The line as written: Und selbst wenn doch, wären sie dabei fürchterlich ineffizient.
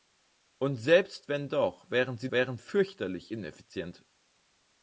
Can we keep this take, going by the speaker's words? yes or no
no